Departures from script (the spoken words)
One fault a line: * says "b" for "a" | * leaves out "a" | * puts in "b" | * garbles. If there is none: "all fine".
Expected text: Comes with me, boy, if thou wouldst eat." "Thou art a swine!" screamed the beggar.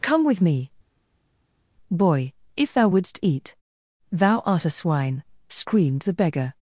* says "Come" for "Comes"